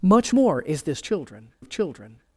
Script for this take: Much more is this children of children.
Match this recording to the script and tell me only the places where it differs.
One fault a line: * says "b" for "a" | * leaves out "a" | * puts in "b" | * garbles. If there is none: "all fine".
all fine